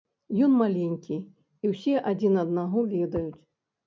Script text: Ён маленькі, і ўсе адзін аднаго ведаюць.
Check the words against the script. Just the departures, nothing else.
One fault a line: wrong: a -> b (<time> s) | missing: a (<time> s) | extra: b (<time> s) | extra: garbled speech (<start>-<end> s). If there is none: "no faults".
no faults